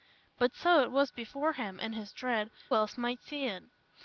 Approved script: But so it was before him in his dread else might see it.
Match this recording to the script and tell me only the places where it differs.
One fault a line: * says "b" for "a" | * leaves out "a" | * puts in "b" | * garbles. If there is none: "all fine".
all fine